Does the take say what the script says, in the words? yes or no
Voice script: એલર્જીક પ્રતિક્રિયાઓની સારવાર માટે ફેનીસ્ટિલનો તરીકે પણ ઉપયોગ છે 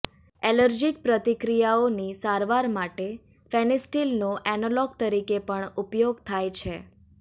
no